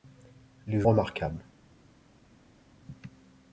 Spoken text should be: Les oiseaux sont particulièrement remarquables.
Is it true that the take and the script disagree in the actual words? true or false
true